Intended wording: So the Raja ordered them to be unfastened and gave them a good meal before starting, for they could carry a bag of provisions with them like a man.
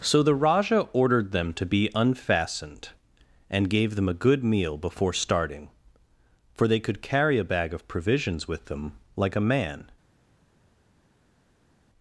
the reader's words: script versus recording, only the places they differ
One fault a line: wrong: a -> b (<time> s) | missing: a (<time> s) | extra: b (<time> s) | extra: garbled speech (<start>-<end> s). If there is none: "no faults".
no faults